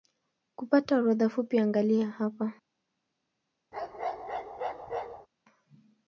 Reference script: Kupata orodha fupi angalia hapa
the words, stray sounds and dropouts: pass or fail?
fail